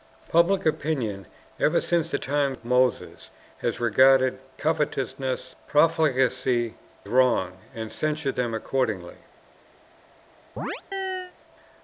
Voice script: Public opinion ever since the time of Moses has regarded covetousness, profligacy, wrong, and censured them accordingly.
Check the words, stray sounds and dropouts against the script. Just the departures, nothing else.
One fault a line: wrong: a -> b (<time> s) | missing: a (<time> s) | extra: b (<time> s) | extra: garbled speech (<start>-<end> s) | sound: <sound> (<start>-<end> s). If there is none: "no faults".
sound: chirp (10.6-11.3 s)